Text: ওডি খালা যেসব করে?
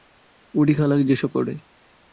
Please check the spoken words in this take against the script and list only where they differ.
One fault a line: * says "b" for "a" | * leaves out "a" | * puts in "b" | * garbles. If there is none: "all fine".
all fine